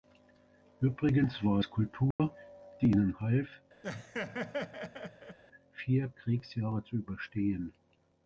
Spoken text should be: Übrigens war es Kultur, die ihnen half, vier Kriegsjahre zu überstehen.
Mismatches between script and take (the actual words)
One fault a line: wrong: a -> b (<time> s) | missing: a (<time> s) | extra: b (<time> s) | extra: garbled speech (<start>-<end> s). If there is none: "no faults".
no faults